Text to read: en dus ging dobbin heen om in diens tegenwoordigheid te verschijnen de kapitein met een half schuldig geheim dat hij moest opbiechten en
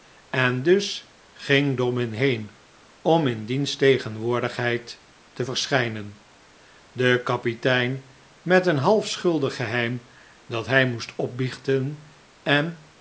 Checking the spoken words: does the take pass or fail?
pass